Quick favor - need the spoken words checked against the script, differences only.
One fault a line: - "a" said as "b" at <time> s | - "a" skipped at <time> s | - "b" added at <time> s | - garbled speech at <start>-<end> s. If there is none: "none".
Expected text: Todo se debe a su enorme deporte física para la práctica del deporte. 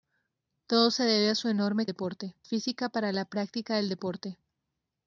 none